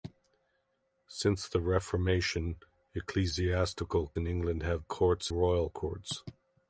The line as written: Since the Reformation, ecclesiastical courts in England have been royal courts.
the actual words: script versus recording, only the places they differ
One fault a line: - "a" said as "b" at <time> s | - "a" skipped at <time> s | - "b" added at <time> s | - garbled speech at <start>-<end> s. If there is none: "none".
- "courts" skipped at 4.2 s
- "been" said as "courts" at 4.9 s